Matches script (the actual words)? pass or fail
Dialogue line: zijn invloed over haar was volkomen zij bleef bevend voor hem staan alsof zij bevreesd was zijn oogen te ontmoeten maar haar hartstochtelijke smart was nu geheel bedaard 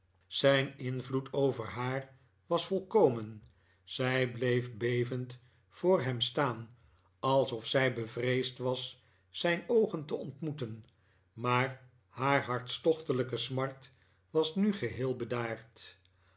pass